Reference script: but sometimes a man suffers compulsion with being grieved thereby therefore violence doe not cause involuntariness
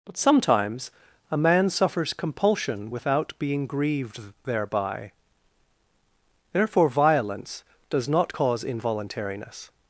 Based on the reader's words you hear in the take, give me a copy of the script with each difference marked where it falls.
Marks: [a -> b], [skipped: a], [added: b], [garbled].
but sometimes a man suffers compulsion [with -> without] being grieved thereby therefore violence [doe -> does] not cause involuntariness